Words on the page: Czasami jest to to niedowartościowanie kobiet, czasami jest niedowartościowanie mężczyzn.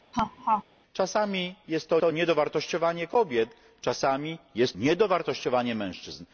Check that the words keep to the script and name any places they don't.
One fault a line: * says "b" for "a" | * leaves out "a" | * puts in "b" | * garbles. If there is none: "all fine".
all fine